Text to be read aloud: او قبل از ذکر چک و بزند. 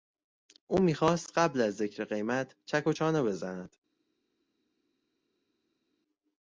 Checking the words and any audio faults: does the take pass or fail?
fail